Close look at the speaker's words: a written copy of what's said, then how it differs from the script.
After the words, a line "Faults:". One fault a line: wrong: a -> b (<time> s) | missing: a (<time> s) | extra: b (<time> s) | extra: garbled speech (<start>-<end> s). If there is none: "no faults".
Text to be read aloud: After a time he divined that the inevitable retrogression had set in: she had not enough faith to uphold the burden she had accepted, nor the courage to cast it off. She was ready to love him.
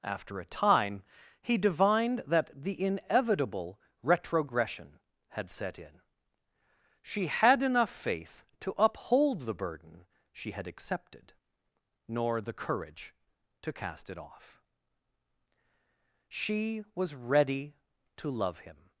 After a time he divined that the inevitable retrogression had set in: she had enough faith to uphold the burden she had accepted, nor the courage to cast it off. She was ready to love him.
Faults:
missing: not (7.6 s)